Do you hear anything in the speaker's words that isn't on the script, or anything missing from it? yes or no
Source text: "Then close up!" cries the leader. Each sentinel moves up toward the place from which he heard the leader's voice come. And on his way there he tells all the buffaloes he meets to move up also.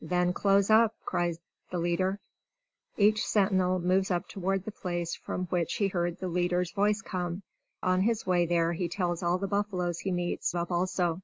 yes